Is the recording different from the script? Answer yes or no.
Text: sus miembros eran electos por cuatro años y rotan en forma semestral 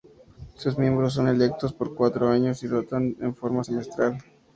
yes